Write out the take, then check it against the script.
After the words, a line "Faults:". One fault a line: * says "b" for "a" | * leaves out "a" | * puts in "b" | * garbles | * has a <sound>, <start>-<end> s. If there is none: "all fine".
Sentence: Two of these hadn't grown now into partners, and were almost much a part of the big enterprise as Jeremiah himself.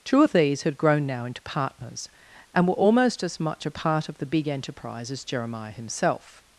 Two of these had grown now into partners, and were almost as much a part of the big enterprise as Jeremiah himself.
Faults:
* says "had" for "hadn't"
* puts in "as"